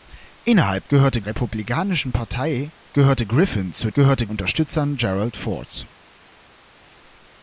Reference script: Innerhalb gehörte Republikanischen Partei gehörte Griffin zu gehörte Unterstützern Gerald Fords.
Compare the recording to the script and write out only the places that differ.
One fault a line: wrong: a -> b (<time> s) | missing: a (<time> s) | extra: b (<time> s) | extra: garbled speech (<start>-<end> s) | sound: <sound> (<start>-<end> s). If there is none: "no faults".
no faults